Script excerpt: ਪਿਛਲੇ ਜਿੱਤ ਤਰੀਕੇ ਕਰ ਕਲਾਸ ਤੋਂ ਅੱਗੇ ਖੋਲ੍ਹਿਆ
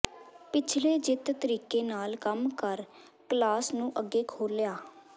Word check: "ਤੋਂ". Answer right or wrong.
wrong